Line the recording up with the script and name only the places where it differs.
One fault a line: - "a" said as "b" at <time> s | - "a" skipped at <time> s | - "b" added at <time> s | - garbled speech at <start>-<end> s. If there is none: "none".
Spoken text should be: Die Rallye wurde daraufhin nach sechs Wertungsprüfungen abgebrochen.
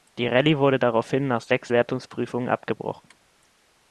none